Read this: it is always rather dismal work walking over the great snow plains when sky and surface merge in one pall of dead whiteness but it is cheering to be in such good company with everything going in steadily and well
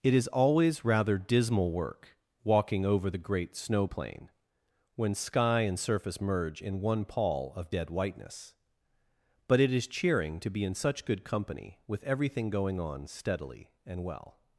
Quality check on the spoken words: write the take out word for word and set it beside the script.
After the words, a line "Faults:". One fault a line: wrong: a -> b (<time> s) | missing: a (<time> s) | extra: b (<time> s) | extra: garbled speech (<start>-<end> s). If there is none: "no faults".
it is always rather dismal work walking over the great snow plain when sky and surface merge in one pall of dead whiteness but it is cheering to be in such good company with everything going on steadily and well
Faults:
wrong: plains -> plain (3.8 s)
wrong: in -> on (12.8 s)